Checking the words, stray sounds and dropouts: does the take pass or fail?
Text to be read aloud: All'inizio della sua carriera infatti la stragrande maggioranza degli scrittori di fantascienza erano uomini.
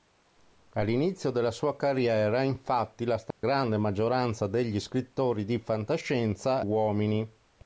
fail